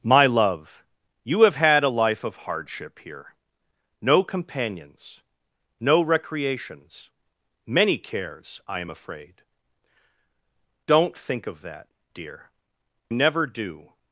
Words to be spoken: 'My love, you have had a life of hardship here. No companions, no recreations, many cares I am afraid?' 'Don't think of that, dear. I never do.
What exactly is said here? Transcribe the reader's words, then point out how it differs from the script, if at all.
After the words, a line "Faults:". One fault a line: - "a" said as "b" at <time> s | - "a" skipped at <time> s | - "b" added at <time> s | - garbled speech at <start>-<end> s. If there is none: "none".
'My love, you have had a life of hardship here. No companions, no recreations, many cares I am afraid?' 'Don't think of that, dear. never do.
Faults:
- "I" skipped at 12.5 s